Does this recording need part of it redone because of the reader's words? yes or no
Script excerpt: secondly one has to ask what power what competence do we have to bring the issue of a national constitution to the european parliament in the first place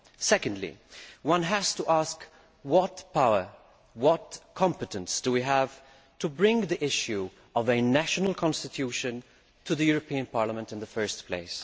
no